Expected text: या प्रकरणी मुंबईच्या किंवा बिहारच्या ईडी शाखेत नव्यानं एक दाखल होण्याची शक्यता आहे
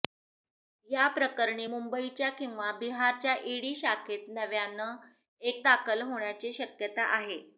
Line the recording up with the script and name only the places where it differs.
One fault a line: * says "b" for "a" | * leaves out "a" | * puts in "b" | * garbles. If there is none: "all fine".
all fine